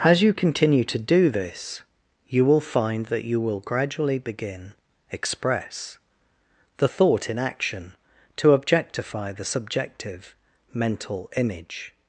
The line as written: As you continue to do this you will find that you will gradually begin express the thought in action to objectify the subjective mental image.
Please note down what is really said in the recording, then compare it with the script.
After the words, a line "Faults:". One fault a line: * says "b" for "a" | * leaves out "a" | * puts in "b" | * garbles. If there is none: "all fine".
As you continue to do this you will find that you will gradually begin express the thought in action to objectify the subjective mental image.
Faults:
all fine